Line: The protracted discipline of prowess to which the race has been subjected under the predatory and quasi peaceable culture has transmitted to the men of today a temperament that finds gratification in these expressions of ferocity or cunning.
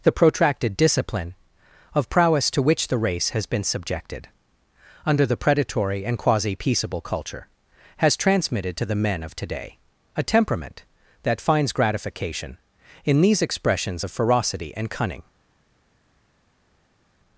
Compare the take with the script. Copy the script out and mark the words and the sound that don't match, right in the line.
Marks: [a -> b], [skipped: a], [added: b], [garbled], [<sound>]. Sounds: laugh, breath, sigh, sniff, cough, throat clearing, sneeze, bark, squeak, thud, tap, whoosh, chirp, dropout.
The protracted discipline of prowess to which the race has been subjected under the predatory and quasi peaceable culture has transmitted to the men of today a temperament that finds gratification in these expressions of ferocity [or -> and] cunning.